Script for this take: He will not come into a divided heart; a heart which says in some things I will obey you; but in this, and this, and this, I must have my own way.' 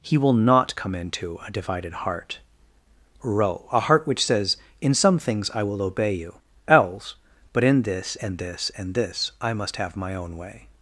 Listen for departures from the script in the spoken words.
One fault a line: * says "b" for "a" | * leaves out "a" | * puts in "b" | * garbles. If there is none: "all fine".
* puts in "ro"
* puts in "else"